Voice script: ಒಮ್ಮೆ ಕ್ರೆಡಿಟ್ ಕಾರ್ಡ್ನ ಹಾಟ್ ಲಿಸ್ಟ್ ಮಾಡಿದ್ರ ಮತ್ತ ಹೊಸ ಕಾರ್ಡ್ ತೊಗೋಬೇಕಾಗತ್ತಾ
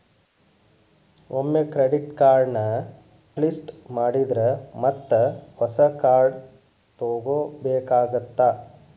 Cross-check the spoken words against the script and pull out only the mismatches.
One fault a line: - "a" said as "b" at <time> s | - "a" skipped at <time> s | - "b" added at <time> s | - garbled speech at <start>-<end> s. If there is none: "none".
- "ಹಾಟ್" skipped at 2.6 s